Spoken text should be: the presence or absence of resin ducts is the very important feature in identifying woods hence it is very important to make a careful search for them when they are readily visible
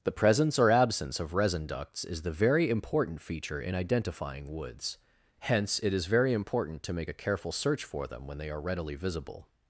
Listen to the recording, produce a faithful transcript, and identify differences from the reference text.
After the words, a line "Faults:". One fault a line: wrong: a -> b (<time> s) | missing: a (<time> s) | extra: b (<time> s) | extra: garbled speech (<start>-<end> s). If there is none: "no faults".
the presence or absence of resin ducts is the very important feature in identifying woods hence it is very important to make a careful search for them when they are readily visible
Faults:
no faults